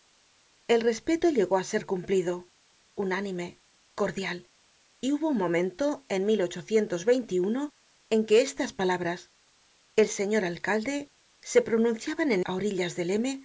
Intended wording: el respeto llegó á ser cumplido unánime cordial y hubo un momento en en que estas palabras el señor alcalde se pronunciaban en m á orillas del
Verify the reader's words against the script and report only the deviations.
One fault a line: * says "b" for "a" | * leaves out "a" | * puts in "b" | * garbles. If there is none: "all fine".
* leaves out "m"